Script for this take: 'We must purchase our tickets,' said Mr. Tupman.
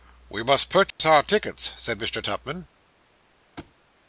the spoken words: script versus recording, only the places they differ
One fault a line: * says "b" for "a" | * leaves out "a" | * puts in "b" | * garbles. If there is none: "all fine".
all fine